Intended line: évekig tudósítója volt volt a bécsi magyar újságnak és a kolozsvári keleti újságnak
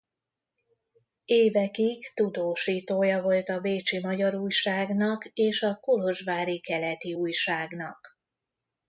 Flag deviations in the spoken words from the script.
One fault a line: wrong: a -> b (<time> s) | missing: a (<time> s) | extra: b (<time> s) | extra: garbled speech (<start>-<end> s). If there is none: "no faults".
missing: volt (3.5 s)